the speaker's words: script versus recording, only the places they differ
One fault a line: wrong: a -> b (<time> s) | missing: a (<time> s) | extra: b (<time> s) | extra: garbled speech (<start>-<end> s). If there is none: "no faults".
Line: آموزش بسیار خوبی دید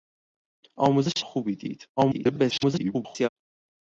missing: بسیار (1.2 s)
extra: garbled speech (2.0-3.3 s)